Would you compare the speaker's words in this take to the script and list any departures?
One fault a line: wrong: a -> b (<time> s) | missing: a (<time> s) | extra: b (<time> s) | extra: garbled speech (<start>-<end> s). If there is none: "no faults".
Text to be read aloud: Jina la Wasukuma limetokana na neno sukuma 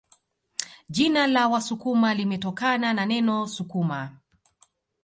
no faults